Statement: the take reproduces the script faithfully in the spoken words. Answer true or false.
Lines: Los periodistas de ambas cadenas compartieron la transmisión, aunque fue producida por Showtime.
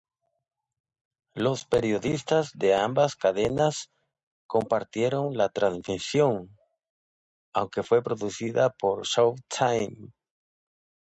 true